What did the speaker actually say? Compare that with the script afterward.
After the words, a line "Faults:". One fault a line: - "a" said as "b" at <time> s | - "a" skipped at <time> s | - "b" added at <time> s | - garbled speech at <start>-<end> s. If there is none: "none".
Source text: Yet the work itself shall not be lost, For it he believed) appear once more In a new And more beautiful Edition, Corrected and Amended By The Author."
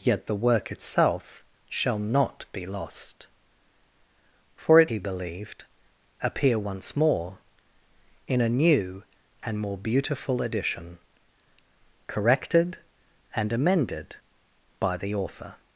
Yet the work itself shall not be lost, For it he believed) appear once more In a new And more beautiful Edition, Corrected and Amended By The Author."
Faults:
none